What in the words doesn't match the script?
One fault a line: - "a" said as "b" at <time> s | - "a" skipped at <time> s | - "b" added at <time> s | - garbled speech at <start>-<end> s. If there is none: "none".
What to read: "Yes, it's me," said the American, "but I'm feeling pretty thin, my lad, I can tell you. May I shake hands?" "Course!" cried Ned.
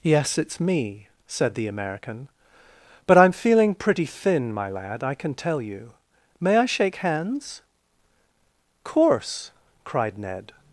none